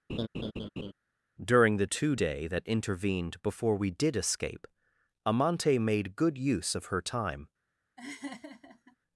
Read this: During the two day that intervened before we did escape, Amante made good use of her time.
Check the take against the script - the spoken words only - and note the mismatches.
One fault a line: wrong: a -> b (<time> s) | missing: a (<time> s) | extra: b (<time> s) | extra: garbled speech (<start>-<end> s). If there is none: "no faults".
no faults